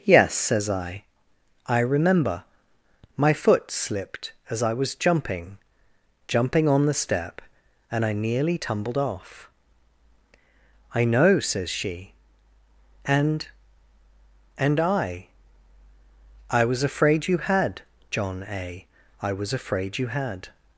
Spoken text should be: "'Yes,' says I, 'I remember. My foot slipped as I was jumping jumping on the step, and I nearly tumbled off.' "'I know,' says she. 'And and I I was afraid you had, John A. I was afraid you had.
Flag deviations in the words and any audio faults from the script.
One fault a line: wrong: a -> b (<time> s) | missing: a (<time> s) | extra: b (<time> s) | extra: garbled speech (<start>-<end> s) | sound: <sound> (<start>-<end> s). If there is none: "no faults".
no faults